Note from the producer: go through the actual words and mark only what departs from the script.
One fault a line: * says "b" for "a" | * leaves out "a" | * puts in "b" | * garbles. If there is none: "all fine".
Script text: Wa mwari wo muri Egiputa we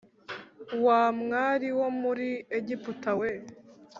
all fine